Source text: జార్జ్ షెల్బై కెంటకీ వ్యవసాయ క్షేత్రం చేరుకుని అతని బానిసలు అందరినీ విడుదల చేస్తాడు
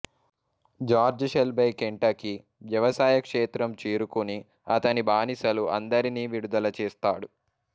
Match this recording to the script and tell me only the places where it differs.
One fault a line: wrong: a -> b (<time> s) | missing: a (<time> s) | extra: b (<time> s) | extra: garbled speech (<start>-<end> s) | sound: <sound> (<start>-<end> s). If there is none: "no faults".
no faults